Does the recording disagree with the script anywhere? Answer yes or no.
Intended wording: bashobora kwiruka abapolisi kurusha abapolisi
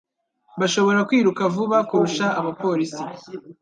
yes